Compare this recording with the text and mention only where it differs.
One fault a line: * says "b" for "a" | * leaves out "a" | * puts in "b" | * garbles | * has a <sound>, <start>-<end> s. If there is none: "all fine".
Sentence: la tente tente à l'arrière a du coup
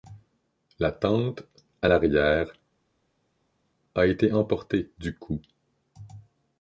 * leaves out "tente"
* puts in "été emportée"